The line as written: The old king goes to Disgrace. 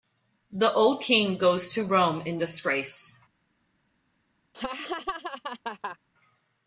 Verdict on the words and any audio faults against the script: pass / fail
fail